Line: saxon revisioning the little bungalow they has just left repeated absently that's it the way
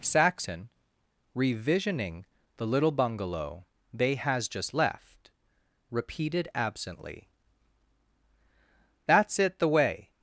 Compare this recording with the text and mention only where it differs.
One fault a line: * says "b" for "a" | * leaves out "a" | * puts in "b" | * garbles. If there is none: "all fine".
all fine